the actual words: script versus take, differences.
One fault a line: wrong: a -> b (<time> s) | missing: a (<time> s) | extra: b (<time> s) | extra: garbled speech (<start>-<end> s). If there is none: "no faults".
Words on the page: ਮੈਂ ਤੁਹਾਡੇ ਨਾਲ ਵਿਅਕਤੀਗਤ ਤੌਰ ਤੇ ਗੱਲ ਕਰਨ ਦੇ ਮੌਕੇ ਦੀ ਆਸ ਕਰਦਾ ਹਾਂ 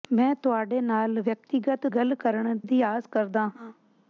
missing: ਤੌਰ ਤੇ (1.9 s)
missing: ਦੇ ਮੌਕੇ (2.6 s)